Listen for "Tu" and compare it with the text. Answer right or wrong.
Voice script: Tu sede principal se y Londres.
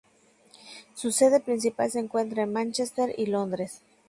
wrong